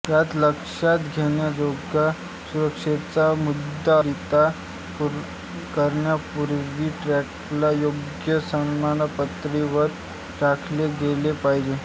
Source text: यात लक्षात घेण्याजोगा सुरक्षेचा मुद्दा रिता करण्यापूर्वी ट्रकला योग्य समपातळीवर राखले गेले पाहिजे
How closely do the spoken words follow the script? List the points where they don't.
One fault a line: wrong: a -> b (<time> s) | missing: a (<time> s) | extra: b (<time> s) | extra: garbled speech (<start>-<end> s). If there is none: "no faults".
no faults